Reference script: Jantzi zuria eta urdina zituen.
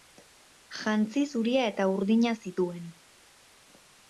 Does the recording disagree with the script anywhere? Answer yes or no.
no